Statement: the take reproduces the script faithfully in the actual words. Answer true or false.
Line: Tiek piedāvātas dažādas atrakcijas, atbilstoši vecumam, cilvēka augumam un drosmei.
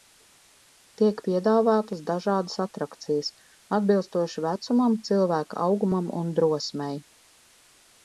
true